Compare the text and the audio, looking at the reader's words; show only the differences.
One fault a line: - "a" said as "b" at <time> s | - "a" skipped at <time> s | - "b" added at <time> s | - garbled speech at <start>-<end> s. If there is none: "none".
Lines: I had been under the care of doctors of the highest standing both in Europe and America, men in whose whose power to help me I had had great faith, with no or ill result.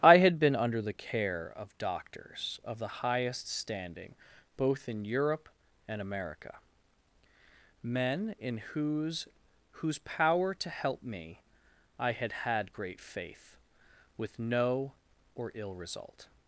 none